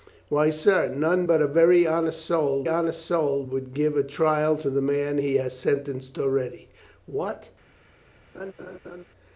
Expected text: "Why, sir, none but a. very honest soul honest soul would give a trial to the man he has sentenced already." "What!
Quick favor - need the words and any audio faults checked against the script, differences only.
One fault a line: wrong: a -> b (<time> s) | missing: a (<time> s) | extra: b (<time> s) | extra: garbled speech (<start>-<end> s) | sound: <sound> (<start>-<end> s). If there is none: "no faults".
sound: laugh (8.3-9.0 s)